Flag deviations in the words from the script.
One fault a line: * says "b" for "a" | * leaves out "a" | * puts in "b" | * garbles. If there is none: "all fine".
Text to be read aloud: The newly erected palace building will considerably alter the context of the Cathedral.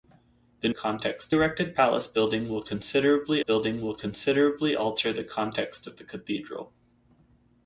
* says "context" for "newly"
* puts in "building will considerably"